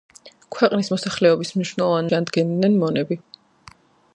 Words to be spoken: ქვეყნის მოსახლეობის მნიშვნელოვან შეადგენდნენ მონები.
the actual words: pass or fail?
pass